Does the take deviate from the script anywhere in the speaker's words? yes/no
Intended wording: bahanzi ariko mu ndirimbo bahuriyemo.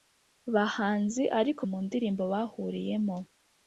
no